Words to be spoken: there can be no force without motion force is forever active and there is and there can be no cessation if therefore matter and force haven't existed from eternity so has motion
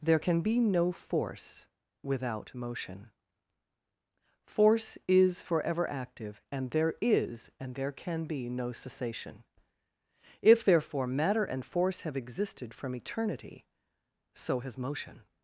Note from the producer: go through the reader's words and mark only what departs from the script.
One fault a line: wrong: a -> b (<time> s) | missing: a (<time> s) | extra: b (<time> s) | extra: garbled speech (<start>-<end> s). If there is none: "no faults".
wrong: haven't -> have (12.0 s)